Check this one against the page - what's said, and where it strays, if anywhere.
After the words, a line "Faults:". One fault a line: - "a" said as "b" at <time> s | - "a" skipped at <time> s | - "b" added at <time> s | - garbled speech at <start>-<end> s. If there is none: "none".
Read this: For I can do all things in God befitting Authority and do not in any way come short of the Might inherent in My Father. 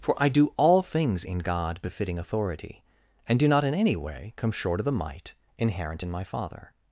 For I do all things in God befitting Authority and do not in any way come short of the Might inherent in My Father.
Faults:
- "can" skipped at 0.3 s